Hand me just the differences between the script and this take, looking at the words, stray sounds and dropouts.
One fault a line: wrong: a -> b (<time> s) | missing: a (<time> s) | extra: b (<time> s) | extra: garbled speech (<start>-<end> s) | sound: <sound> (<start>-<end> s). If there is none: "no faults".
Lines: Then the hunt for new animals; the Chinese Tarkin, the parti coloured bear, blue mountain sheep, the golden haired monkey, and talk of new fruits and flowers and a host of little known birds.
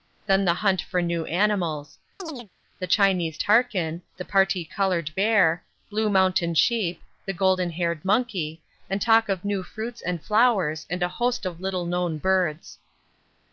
sound: chirp (2.2-2.5 s)